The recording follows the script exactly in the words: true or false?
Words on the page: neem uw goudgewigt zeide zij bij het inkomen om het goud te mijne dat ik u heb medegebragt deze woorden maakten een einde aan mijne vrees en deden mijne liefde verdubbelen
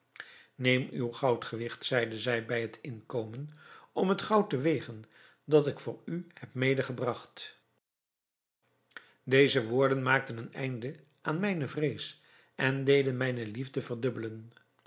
false